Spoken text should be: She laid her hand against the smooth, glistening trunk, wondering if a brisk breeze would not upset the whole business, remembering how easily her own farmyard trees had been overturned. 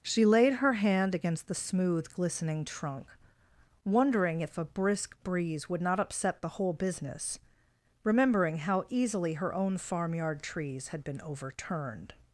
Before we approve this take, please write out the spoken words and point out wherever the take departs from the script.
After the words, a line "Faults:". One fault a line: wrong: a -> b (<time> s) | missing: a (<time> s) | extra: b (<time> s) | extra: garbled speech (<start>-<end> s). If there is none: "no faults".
She laid her hand against the smooth, glistening trunk, wondering if a brisk breeze would not upset the whole business, remembering how easily her own farmyard trees had been overturned.
Faults:
no faults